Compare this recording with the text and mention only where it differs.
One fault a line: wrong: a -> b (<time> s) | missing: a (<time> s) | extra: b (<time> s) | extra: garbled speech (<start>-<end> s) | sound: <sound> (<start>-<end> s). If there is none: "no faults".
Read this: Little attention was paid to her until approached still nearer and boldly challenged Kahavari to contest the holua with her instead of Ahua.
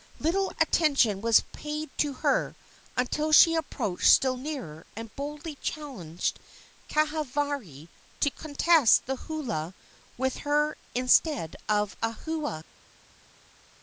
extra: she (3.3 s)